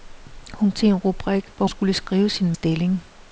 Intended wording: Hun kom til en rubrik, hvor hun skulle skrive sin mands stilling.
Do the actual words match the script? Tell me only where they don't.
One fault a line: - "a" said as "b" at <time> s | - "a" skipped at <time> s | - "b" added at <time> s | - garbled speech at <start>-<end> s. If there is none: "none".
- "kom" skipped at 0.7 s
- "hun" skipped at 1.7 s
- "mands" skipped at 2.5 s